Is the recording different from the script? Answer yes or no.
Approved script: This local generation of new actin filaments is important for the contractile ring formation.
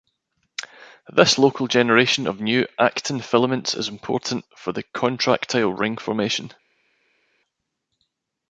no